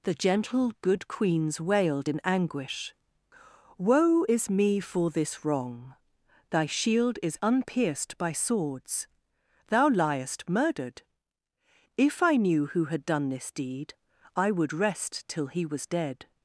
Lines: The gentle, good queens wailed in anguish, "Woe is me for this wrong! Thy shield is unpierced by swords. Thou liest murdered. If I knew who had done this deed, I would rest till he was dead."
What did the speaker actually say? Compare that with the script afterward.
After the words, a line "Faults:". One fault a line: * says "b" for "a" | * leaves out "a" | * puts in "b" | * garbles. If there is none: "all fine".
The gentle, good queens wailed in anguish, "Woe is me for this wrong! Thy shield is unpierced by swords. Thou liest murdered. If I knew who had done this deed, I would rest till he was dead."
Faults:
all fine